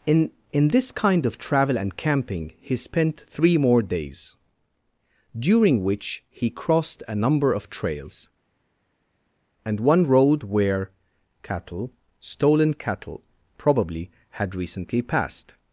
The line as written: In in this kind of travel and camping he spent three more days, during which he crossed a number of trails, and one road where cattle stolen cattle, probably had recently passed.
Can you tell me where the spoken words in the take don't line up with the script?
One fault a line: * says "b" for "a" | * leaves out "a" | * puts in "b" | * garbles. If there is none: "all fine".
all fine